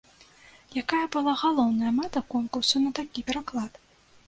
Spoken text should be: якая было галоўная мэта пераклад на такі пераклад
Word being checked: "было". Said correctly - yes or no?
no